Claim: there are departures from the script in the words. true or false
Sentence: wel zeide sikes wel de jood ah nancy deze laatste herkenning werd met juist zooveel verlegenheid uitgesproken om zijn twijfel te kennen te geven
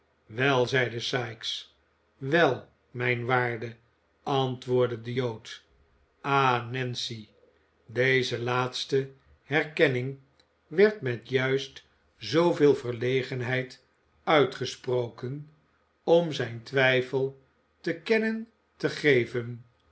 true